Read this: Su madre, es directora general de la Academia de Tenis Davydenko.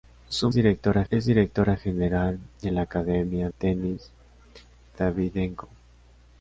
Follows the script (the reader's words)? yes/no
no